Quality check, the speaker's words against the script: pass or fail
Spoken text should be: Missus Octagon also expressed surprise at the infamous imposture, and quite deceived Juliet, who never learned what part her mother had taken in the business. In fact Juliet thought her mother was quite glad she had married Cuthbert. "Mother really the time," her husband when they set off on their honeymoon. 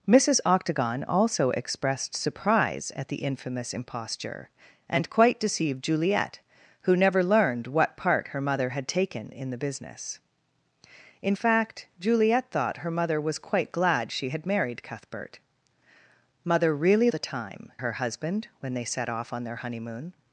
pass